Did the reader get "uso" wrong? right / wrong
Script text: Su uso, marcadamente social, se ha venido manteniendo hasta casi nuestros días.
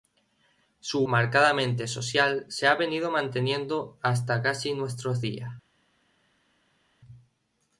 wrong